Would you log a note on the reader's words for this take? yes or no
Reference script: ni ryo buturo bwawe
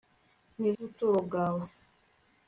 yes